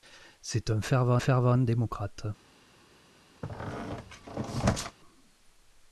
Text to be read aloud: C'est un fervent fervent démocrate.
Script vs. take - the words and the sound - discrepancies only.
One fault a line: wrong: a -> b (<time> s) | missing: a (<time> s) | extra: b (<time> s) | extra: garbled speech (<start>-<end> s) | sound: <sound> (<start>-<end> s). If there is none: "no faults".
sound: squeak (3.4-5.0 s)